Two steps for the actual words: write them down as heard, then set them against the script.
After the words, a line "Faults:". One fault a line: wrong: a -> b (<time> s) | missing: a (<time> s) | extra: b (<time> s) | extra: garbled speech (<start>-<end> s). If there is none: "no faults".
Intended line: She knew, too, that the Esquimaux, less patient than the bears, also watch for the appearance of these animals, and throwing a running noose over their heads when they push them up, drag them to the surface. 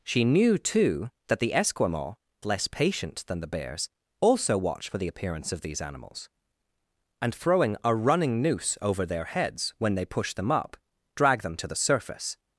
She knew, too, that the Esquimaux, less patient than the bears, also watch for the appearance of these animals, and throwing a running noose over their heads when they push them up, drag them to the surface.
Faults:
no faults